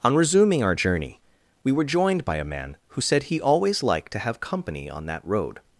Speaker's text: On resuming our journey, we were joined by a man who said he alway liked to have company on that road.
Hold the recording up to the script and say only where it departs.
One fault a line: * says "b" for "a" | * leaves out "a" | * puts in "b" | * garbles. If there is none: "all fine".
* says "always" for "alway"